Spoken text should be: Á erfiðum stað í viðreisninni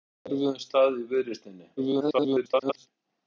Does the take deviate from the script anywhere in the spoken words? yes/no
yes